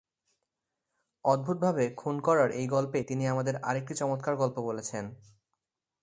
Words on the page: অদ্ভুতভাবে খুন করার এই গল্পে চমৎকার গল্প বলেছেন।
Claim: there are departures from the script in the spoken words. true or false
true